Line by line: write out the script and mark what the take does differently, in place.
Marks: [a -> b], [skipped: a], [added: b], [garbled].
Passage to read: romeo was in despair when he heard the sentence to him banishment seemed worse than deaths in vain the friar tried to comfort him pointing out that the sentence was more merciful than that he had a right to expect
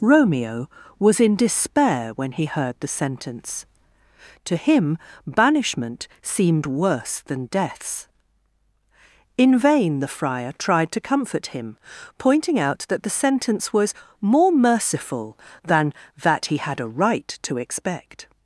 romeo was in despair when he heard the sentence to him banishment seemed worse than deaths in vain the friar tried to comfort him pointing out that the sentence was more merciful than that he had a right to expect